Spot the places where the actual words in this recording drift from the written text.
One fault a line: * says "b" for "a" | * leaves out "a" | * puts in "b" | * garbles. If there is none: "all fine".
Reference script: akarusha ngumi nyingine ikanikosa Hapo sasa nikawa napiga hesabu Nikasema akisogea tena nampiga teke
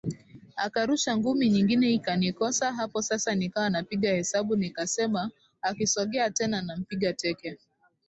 all fine